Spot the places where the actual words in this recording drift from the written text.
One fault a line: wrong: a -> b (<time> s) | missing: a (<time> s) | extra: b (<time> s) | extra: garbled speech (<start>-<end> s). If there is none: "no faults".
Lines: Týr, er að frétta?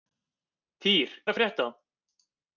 no faults